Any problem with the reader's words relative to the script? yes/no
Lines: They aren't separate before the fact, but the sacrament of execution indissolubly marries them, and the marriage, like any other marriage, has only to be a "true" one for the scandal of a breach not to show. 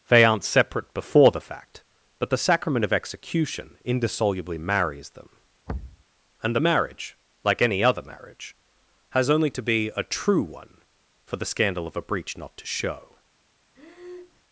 no